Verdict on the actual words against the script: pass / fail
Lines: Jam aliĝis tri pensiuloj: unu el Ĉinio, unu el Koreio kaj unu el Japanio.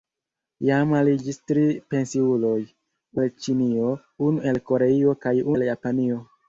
fail